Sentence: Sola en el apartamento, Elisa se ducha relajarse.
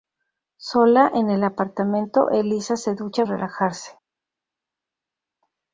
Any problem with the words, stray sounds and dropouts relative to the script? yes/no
no